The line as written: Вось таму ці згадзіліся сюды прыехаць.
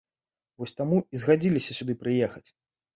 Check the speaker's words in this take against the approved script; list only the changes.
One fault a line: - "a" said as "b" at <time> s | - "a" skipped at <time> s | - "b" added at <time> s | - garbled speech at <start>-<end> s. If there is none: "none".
- "ці" said as "і" at 1.1 s